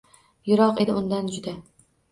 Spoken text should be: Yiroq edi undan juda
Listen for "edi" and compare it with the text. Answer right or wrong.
right